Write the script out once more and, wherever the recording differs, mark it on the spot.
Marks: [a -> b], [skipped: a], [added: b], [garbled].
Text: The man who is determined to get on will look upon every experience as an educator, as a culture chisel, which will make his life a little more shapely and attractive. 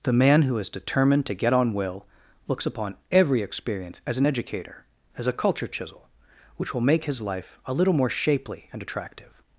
The man who is determined to get on will [look -> looks] upon every experience as an educator, as a culture chisel, which will make his life a little more shapely and attractive.